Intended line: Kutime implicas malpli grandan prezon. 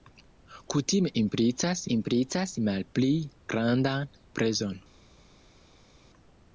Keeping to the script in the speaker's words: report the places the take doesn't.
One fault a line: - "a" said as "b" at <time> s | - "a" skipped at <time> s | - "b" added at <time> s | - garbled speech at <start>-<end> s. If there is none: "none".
- "implicas" added at 1.9 s